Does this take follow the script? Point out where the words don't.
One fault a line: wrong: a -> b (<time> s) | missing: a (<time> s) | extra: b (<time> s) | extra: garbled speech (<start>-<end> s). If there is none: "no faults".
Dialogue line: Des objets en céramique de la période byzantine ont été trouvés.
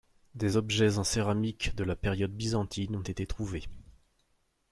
no faults